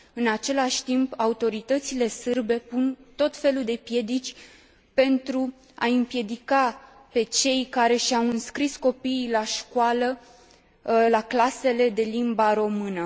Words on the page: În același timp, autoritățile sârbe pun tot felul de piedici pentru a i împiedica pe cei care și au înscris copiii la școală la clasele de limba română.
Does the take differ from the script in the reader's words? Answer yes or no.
no